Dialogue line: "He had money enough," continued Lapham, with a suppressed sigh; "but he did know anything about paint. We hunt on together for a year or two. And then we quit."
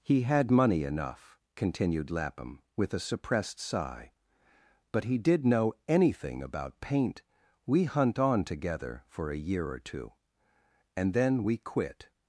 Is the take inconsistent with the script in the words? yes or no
no